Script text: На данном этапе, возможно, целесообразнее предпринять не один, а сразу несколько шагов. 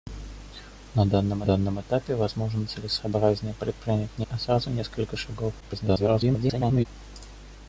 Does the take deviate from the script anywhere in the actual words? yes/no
yes